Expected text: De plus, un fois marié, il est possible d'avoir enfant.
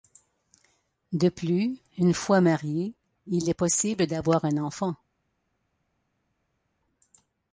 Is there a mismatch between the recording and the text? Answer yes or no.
yes